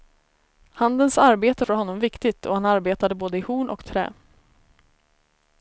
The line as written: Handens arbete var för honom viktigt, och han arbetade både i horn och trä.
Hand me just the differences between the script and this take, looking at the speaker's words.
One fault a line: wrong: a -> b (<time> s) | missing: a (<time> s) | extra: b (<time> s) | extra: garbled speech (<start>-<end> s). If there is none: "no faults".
missing: var (1.6 s)